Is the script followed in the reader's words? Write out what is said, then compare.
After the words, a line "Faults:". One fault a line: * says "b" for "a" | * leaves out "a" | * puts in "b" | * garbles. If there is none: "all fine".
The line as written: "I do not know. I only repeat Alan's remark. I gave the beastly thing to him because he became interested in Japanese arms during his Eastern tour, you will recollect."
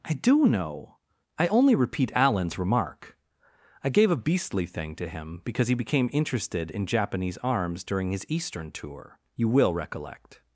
"I do know. I only repeat Alan's remark. I gave a beastly thing to him because he became interested in Japanese arms during his Eastern tour, you will recollect."
Faults:
* leaves out "not"
* says "a" for "the"